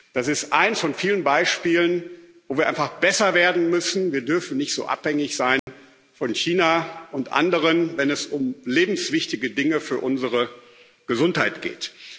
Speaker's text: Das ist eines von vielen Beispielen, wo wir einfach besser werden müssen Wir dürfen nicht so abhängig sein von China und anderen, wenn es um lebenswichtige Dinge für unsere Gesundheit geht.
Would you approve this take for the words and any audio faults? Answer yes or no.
no